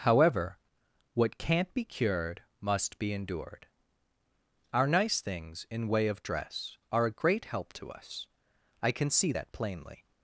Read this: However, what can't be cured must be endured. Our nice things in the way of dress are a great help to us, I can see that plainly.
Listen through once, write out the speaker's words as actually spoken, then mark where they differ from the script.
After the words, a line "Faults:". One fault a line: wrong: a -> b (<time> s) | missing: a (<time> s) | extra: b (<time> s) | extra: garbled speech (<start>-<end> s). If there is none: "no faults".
However, what can't be cured must be endured. Our nice things in way of dress are a great help to us, I can see that plainly.
Faults:
missing: the (5.9 s)